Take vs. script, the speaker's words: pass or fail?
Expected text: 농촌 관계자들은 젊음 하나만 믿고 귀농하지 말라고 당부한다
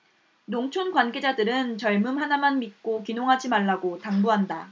pass